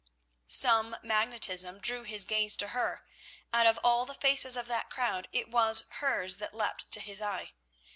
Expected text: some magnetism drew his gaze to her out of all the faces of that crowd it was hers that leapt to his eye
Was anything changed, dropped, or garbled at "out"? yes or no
no